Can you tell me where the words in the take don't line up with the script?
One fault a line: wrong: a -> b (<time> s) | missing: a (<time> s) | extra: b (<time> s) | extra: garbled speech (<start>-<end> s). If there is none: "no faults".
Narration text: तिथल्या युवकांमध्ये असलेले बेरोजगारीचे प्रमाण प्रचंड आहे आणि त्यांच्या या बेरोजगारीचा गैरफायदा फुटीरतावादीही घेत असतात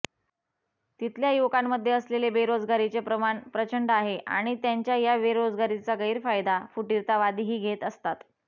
no faults